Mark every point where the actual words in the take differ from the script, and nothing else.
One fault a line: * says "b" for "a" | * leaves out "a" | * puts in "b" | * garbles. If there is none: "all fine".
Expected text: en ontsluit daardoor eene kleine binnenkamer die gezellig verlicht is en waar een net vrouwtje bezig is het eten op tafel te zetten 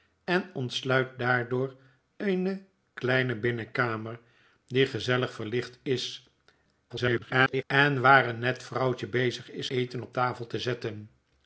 * garbles
* leaves out "het"